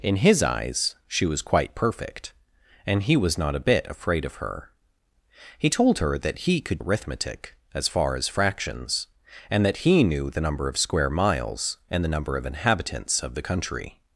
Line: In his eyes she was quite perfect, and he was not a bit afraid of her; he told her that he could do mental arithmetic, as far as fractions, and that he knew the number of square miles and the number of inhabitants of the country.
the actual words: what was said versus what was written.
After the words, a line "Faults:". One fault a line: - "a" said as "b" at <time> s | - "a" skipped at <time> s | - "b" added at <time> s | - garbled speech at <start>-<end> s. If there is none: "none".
In his eyes she was quite perfect, and he was not a bit afraid of her; he told her that he could arithmetic, as far as fractions, and that he knew the number of square miles and the number of inhabitants of the country.
Faults:
- "do mental" skipped at 6.8 s